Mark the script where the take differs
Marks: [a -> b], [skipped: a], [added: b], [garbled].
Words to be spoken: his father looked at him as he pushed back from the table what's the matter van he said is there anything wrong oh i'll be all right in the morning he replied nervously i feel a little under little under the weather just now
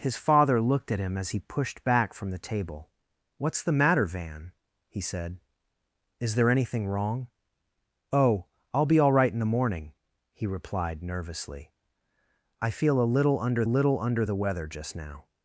his father looked at him as he pushed back from the table what's the matter van he said is there anything wrong oh i'll be all right in the morning he replied nervously i feel a little under little under the weather just now